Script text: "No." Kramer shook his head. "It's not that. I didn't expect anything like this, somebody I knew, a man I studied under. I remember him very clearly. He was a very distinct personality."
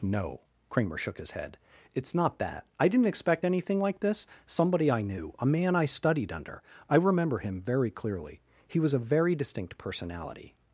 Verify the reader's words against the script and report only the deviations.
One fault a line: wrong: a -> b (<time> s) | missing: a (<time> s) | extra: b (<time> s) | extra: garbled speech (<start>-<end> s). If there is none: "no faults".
no faults